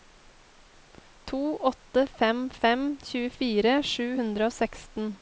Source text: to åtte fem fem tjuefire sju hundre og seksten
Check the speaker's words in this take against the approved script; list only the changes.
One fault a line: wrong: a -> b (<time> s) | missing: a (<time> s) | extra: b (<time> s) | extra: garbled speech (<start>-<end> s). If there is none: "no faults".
no faults